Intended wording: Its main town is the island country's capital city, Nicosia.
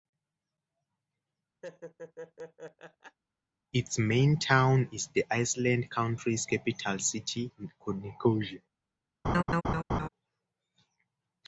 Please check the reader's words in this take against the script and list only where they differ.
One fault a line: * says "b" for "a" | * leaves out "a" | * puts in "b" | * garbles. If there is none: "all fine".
all fine